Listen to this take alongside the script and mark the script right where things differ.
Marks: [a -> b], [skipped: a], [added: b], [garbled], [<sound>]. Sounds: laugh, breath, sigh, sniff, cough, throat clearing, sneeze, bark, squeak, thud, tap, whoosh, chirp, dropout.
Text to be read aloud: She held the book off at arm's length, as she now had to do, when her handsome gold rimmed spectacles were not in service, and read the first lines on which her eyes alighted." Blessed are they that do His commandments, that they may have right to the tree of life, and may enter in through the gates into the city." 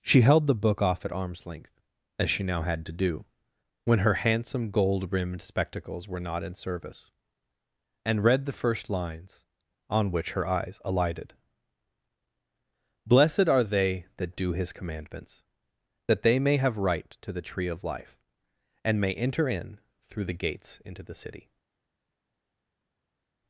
She held the book off at arm's length, as she now had to do, when her handsome gold rimmed spectacles were not in service, and read the first lines on which her eyes alighted." Blessed are they that do His commandments, that they may have right to the tree of life, and may enter in through the gates into the city."